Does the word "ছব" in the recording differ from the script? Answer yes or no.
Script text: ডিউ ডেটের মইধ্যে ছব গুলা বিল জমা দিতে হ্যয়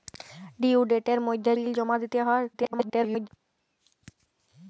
yes